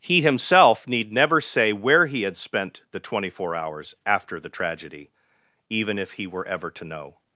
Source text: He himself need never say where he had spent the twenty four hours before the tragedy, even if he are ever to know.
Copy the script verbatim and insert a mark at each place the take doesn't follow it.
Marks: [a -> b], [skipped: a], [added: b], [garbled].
He himself need never say where he had spent the twenty four hours [before -> after] the tragedy, even if he [are -> were] ever to know.